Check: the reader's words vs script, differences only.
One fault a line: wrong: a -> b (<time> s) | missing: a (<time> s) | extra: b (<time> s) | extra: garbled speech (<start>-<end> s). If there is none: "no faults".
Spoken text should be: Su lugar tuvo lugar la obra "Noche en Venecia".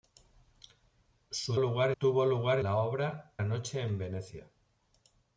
no faults